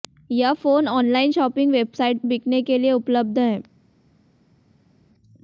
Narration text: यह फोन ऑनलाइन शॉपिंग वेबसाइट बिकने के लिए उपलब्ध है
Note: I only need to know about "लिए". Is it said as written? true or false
true